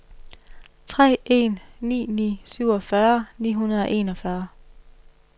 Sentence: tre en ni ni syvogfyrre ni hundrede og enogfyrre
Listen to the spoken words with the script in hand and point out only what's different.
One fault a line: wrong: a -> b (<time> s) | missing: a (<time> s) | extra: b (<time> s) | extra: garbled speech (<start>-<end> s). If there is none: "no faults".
no faults